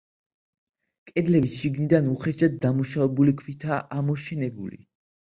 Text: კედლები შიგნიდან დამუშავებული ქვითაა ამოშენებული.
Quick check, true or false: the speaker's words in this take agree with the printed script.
false